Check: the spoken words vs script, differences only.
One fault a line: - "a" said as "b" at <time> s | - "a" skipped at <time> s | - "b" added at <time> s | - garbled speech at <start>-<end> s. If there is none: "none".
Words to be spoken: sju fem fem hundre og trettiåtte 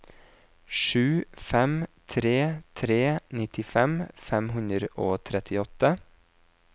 - "tre tre nittifem" added at 2.1 s